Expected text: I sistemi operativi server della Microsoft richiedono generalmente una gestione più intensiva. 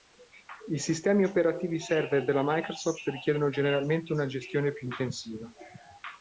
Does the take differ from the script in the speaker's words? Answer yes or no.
no